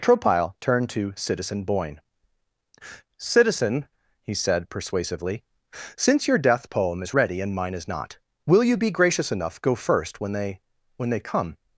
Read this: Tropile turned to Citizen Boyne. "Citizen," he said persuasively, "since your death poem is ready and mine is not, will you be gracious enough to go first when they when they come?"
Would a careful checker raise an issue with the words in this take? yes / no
yes